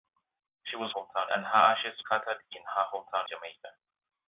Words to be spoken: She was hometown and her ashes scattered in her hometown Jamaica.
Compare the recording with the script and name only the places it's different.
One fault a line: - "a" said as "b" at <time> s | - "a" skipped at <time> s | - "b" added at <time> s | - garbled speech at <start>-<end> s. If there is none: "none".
none